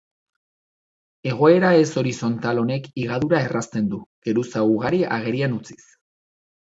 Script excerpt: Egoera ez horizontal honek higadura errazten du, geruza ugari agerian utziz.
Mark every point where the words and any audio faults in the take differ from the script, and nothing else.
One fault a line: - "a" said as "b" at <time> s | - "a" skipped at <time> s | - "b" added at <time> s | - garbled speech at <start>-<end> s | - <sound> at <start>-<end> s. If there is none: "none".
none